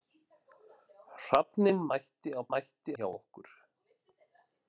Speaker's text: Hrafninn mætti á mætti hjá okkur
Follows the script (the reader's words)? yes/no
yes